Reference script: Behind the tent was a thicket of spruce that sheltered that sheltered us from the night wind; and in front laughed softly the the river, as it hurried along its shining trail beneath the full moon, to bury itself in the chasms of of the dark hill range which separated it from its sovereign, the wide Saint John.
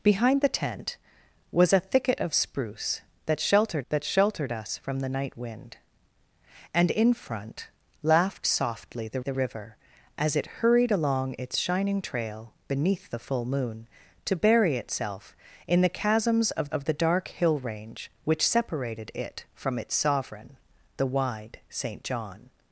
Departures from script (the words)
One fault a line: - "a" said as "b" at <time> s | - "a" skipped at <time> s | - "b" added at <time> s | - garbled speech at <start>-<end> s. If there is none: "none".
none